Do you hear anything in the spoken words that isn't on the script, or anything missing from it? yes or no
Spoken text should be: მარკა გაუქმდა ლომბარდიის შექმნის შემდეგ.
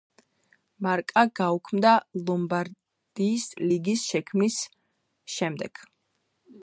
yes